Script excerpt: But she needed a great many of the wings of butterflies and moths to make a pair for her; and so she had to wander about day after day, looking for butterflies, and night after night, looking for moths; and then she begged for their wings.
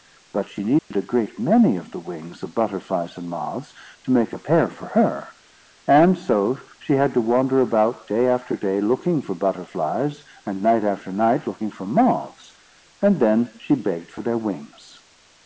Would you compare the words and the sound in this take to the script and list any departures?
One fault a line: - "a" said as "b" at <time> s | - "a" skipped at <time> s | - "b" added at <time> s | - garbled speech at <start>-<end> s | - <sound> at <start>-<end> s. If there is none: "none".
- dropout at 0.8-0.9 s